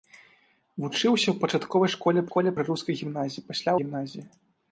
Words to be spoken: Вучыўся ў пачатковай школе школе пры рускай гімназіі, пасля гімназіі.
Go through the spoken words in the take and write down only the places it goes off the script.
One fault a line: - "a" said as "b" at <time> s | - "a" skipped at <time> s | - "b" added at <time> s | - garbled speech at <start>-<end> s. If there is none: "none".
none